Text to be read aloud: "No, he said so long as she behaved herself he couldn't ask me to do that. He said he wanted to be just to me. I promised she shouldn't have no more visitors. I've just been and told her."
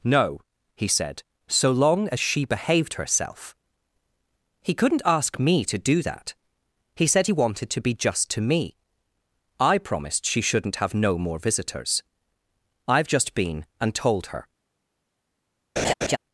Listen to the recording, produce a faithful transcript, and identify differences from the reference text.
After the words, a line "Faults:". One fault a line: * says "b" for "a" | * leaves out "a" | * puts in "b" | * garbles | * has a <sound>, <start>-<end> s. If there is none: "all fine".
"No, he said so long as she behaved herself he couldn't ask me to do that. He said he wanted to be just to me. I promised she shouldn't have no more visitors. I've just been and told her."
Faults:
* has a laugh, 15.8-16.2 s